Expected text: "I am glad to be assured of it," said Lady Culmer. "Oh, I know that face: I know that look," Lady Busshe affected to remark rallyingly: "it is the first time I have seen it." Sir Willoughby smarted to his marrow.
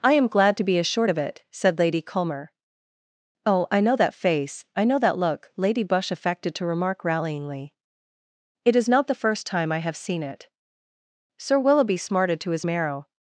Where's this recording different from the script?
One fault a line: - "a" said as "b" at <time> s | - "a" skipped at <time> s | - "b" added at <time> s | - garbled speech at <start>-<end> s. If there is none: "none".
- "not" added at 8.9 s